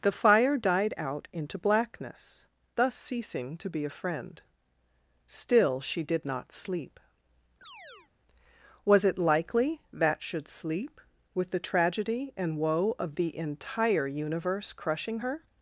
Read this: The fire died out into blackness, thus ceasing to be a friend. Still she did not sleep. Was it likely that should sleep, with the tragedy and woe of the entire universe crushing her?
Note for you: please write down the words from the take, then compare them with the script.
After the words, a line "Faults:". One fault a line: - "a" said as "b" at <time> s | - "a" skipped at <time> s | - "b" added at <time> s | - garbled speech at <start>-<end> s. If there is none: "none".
The fire died out into blackness, thus ceasing to be a friend. Still she did not sleep. Was it likely that should sleep, with the tragedy and woe of the entire universe crushing her?
Faults:
none